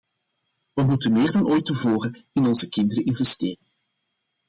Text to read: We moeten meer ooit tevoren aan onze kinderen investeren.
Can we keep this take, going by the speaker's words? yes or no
no